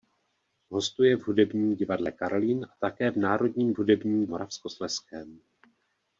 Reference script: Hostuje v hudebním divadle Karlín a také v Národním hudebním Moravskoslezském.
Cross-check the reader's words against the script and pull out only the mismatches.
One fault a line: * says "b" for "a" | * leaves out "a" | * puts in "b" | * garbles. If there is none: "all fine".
all fine